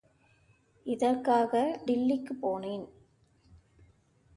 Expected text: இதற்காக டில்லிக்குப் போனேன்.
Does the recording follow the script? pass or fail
pass